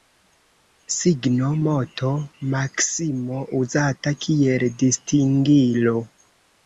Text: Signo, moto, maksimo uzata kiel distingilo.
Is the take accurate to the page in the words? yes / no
yes